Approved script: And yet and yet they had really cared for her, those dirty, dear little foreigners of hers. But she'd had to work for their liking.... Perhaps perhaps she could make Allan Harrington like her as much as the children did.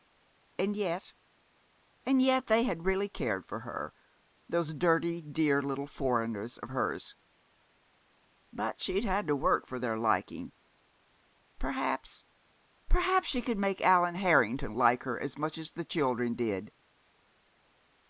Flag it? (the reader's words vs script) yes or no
no